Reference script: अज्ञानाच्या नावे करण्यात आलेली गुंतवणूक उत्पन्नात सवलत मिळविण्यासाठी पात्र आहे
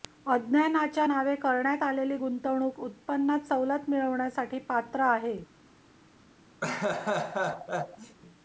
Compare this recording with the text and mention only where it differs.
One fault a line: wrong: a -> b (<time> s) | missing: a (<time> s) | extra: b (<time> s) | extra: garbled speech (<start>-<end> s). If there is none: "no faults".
no faults